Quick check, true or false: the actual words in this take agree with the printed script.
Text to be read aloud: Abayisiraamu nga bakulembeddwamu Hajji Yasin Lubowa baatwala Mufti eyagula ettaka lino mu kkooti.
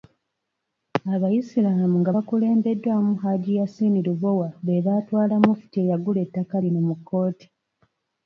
false